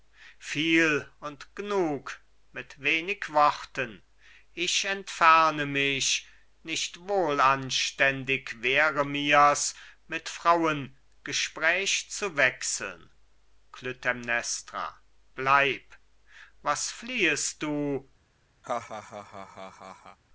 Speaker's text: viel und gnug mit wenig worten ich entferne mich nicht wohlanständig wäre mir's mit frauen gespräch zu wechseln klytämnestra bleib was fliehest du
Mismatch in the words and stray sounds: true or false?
true